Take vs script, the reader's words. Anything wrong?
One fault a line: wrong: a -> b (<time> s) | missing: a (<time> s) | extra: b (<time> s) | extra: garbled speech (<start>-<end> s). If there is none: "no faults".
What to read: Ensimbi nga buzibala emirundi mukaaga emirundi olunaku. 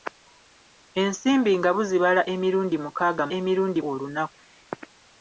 no faults